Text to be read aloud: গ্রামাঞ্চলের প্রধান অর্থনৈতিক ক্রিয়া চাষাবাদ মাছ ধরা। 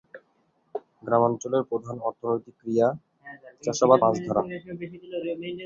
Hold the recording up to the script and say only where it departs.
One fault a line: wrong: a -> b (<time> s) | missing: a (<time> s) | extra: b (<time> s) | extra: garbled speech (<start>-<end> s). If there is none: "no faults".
no faults